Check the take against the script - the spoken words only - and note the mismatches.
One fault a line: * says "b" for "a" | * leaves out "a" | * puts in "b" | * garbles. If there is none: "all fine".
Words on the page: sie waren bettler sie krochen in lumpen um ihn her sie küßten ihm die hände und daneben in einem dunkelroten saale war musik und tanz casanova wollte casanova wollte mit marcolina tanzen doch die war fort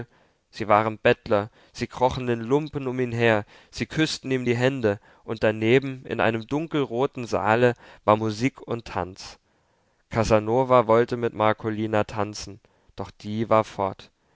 * leaves out "casanova wollte"